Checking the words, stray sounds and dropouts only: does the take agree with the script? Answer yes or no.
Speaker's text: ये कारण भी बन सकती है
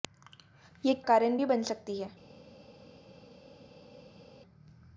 yes